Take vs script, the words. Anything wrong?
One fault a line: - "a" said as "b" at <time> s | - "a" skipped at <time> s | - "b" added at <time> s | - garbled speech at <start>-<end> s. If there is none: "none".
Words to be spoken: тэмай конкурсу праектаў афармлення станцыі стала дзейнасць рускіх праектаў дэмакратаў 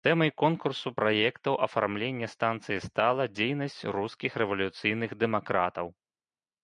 - "праектаў" said as "рэвалюцыйных" at 4.4 s